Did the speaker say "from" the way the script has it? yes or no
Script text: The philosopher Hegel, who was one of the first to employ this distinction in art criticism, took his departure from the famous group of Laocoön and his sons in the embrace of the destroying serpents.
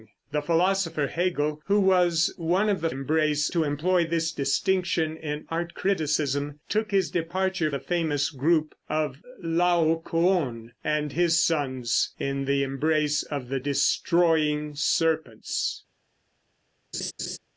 no